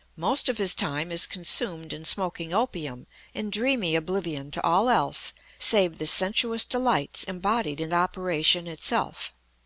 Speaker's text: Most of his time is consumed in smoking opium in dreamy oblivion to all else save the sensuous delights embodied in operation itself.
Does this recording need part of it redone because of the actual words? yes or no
no